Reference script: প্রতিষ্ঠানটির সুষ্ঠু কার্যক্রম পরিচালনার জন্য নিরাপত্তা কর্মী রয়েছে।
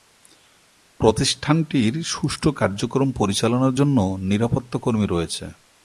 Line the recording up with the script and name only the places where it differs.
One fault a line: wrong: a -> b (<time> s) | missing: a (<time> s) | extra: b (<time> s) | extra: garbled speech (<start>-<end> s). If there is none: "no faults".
no faults